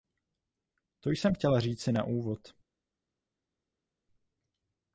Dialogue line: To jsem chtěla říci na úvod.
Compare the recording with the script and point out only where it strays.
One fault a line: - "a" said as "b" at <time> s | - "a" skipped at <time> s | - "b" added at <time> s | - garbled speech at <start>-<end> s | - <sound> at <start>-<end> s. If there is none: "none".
none